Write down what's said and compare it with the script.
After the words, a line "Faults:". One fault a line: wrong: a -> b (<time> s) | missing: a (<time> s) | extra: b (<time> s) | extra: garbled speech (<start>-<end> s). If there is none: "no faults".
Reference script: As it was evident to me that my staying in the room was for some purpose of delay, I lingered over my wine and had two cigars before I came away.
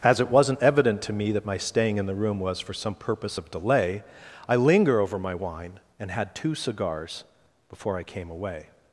As it wasn't evident to me that my staying in the room was for some purpose of delay, I linger over my wine and had two cigars before I came away.
Faults:
wrong: was -> wasn't (0.3 s)
wrong: lingered -> linger (4.5 s)